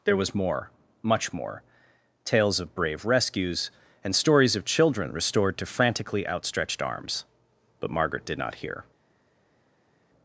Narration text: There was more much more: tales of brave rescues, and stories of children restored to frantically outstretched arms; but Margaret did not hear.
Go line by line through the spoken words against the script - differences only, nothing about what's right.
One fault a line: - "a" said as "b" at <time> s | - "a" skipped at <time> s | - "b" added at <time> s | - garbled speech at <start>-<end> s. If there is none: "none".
none